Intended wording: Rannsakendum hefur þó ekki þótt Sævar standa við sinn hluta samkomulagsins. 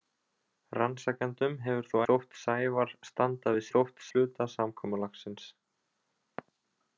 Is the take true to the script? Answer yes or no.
no